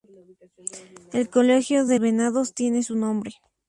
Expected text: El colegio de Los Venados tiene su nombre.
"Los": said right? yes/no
no